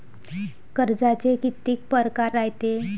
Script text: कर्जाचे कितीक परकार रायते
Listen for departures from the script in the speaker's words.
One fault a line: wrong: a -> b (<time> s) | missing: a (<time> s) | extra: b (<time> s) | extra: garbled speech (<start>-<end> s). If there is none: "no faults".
no faults